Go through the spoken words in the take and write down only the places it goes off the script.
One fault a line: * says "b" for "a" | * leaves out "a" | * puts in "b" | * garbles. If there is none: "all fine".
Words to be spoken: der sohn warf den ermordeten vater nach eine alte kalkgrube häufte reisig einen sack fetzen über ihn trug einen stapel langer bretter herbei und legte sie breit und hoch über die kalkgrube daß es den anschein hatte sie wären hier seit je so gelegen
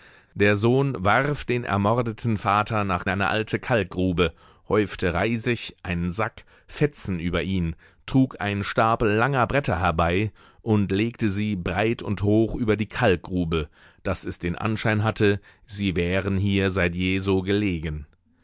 all fine